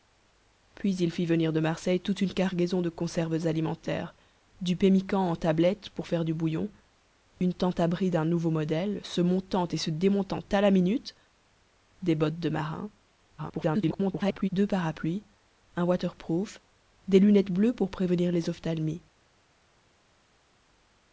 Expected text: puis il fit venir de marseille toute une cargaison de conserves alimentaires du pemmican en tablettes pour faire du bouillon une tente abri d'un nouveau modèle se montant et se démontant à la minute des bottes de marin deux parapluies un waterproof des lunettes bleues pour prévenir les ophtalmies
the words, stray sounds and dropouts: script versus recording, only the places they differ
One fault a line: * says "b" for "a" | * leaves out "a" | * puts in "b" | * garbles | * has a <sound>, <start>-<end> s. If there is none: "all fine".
* garbles